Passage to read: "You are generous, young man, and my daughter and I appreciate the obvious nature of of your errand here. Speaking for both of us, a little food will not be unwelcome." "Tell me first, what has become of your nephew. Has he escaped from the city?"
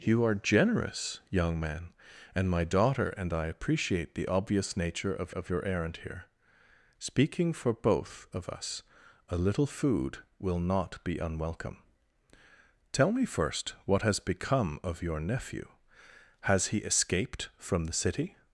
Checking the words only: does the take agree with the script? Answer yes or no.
yes